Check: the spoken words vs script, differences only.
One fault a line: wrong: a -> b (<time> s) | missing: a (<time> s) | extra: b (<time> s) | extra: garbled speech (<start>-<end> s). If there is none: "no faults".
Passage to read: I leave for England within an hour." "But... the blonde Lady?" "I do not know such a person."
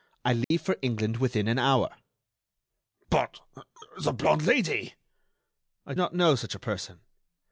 missing: do (5.9 s)